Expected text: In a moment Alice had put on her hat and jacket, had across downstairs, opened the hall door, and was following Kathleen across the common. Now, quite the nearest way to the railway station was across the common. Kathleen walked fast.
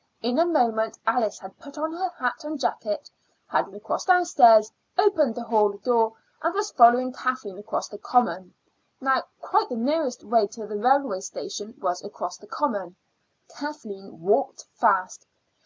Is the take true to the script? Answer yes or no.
yes